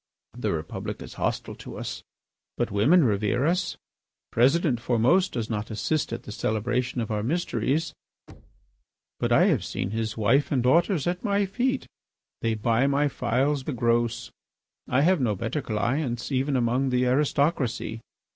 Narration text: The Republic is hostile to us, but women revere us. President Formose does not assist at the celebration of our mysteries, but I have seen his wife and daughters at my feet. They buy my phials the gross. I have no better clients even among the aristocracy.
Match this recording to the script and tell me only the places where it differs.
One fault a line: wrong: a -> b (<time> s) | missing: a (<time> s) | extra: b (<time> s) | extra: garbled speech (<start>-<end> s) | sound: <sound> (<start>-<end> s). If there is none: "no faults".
sound: thud (8.3-8.8 s)